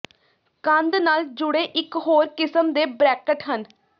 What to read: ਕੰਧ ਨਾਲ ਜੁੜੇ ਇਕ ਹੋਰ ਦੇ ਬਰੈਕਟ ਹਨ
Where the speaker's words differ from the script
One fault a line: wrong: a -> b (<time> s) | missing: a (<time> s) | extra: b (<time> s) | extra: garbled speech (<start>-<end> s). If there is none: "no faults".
extra: ਕਿਸਮ (2.3 s)